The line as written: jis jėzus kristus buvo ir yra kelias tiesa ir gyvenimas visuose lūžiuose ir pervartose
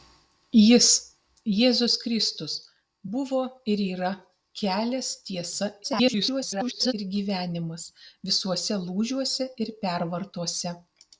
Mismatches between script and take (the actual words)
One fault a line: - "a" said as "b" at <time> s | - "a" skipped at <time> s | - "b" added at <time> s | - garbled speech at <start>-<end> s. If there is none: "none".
- garbled speech at 5.8-6.9 s